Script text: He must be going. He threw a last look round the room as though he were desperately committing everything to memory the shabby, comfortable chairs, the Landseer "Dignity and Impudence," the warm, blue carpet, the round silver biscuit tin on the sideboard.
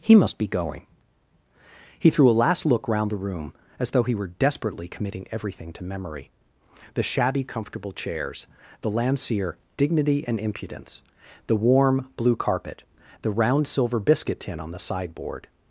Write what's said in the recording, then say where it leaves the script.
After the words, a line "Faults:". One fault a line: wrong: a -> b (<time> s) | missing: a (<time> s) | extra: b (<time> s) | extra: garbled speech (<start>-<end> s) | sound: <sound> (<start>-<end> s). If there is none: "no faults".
He must be going. He threw a last look round the room as though he were desperately committing everything to memory the shabby, comfortable chairs, the Landseer "Dignity and Impudence," the warm, blue carpet, the round silver biscuit tin on the sideboard.
Faults:
no faults